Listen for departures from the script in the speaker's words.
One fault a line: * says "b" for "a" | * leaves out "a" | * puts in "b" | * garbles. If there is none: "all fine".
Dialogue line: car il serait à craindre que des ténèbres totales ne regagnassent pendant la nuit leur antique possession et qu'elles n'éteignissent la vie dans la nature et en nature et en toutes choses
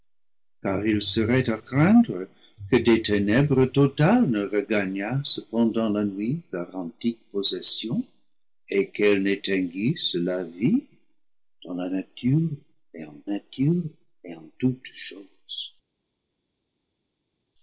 all fine